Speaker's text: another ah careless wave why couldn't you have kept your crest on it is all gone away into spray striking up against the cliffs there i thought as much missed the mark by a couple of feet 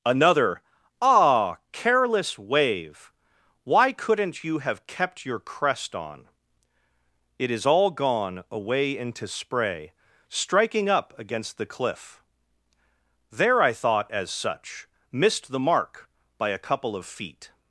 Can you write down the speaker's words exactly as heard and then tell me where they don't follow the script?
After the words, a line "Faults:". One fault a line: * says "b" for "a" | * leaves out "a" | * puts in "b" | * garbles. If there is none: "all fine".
another ah careless wave why couldn't you have kept your crest on it is all gone away into spray striking up against the cliff there i thought as such missed the mark by a couple of feet
Faults:
* says "cliff" for "cliffs"
* says "such" for "much"